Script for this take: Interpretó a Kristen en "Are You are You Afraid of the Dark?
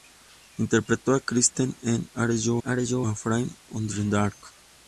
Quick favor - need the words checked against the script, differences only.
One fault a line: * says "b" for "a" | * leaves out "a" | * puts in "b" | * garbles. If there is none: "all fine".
all fine